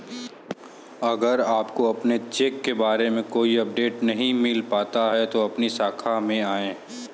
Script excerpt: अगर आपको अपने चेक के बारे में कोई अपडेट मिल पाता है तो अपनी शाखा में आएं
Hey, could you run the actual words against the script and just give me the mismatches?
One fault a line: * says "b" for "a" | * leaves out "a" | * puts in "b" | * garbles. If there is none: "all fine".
* puts in "नहीं"